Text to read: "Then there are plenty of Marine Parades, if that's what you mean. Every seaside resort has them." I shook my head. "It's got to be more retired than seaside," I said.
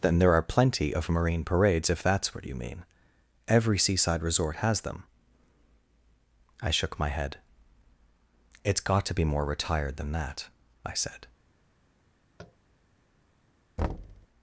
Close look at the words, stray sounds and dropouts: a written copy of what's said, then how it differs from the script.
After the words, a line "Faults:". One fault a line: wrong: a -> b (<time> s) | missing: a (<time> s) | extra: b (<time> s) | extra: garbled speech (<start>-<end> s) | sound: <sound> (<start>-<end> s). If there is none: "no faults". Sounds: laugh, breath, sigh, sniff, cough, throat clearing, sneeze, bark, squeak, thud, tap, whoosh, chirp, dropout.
"Then there are plenty of Marine Parades, if that's what you mean. Every seaside resort has them." I shook my head. "It's got to be more retired than that," I said.
Faults:
wrong: seaside -> that (10.1 s)
sound: tap (12.4-12.6 s)
sound: thud (13.8-14.3 s)